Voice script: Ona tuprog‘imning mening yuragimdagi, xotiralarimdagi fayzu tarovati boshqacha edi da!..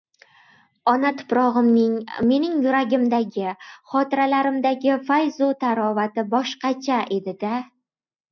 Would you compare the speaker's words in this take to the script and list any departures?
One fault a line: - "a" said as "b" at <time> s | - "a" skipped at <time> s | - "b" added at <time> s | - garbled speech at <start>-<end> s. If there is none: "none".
none